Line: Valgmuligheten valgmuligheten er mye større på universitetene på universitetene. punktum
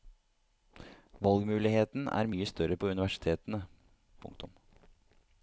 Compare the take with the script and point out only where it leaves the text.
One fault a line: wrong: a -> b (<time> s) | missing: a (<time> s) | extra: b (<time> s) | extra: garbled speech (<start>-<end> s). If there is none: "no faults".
missing: valgmuligheten (2.1 s)
missing: på universitetene (3.6 s)